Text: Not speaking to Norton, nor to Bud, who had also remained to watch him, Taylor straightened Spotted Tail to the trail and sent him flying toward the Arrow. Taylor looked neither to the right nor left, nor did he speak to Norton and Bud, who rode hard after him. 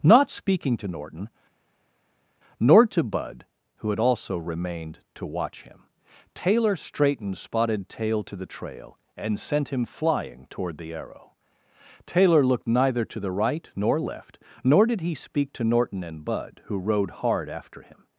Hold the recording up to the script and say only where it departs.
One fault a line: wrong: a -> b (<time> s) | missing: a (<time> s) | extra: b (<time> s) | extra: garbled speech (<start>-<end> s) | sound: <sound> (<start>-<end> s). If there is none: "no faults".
no faults